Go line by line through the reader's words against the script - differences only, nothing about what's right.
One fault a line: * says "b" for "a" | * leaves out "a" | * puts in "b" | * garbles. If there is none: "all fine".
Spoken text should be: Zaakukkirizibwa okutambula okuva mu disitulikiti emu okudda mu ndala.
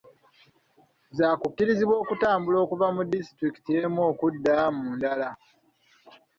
all fine